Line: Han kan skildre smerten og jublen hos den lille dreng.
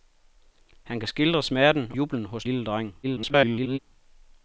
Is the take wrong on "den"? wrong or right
wrong